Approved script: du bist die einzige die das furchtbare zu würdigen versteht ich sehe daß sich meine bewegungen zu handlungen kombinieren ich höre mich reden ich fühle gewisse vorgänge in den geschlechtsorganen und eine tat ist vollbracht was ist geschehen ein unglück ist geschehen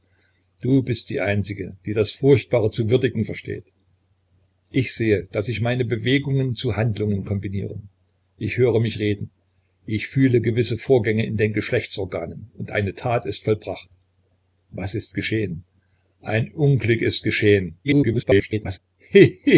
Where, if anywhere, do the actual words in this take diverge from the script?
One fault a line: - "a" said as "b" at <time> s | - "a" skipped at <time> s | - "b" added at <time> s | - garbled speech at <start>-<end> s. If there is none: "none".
- garbled speech at 17.8-18.8 s